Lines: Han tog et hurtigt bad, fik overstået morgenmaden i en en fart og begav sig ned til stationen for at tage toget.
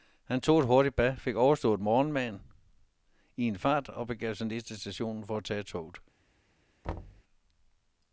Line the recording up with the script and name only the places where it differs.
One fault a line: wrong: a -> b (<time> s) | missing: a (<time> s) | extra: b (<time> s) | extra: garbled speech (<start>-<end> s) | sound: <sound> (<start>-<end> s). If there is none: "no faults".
missing: en (3.6 s)
sound: thud (6.8-7.2 s)